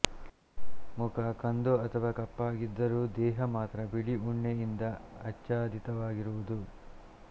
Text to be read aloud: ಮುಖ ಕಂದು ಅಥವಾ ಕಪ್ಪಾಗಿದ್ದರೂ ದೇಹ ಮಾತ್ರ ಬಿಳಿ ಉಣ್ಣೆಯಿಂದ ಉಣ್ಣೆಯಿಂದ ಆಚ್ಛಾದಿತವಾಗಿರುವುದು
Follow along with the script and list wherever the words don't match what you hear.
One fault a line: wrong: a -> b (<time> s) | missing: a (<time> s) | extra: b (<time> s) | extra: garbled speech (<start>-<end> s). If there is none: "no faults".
missing: ಉಣ್ಣೆಯಿಂದ (4.8 s)